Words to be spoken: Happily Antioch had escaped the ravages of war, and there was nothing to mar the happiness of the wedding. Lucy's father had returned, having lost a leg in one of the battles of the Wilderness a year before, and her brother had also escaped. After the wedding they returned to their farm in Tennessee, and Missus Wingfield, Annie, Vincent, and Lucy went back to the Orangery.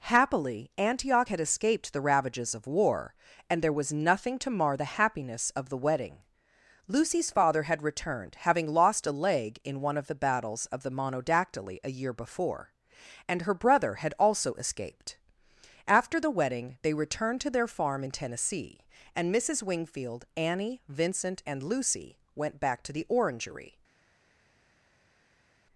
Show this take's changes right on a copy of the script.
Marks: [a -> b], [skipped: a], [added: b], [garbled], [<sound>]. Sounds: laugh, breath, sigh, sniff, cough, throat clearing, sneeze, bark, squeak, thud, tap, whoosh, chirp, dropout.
Happily Antioch had escaped the ravages of war, and there was nothing to mar the happiness of the wedding. Lucy's father had returned, having lost a leg in one of the battles of the [Wilderness -> Monodactyly] a year before, and her brother had also escaped. After the wedding they returned to their farm in Tennessee, and Missus Wingfield, Annie, Vincent, and Lucy went back to the Orangery.